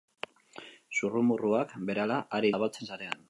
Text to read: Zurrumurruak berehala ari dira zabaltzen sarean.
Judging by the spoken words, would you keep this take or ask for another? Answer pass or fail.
fail